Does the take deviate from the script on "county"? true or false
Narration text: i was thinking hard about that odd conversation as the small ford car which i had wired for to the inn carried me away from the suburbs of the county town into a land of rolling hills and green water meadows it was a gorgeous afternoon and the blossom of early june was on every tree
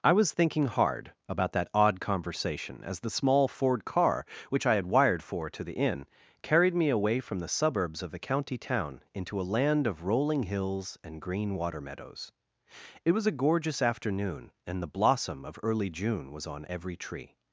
false